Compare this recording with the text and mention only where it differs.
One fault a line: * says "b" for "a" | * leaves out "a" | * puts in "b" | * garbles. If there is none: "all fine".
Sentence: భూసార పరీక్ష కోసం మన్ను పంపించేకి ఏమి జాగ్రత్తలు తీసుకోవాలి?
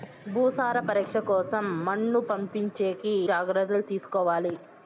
* leaves out "ఏమి"